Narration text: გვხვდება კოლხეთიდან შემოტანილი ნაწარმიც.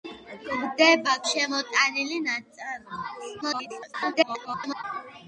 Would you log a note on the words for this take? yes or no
yes